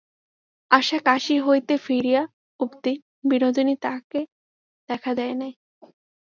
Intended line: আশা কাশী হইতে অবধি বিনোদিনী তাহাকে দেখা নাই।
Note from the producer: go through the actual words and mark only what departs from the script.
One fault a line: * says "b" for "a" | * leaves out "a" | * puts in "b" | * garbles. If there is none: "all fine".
* puts in "ফিরিয়া"
* puts in "দেয়"